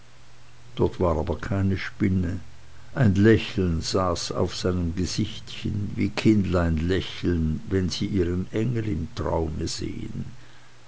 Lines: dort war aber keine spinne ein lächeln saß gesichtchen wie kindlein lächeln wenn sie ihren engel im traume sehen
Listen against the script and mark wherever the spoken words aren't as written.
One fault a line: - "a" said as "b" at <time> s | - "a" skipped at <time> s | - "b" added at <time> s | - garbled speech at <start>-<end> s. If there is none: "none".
- "auf seinem" added at 4.3 s